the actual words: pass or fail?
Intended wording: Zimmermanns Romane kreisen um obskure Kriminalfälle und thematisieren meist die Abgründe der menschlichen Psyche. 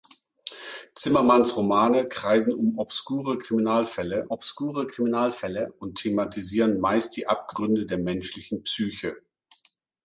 fail